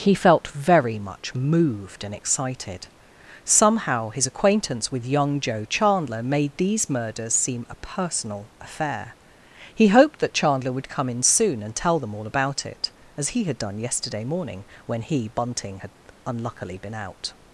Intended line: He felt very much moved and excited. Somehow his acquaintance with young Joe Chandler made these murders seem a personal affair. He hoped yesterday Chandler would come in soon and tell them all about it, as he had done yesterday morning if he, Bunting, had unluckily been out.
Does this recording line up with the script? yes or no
no